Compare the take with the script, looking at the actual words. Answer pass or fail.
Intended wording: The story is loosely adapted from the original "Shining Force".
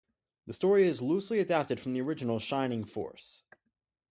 pass